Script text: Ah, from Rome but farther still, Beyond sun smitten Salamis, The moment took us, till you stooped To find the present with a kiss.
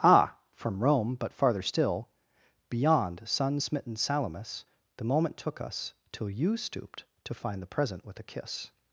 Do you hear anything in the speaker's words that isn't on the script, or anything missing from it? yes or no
no